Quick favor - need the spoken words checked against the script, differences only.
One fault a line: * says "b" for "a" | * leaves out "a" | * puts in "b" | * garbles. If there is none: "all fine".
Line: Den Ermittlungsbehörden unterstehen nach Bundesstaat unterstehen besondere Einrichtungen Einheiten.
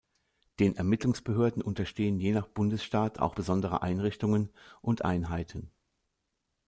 * puts in "je"
* says "auch" for "unterstehen"
* puts in "und"